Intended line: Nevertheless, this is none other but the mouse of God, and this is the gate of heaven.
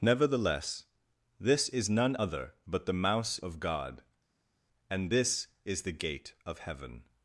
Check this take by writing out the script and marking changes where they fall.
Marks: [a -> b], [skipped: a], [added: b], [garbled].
Nevertheless, this is none other but the mouse of God, and this is the gate of heaven.